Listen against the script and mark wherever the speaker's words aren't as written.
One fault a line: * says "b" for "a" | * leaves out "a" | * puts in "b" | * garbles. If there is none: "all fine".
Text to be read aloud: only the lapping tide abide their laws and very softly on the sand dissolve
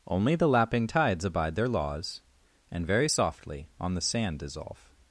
* says "tides" for "tide"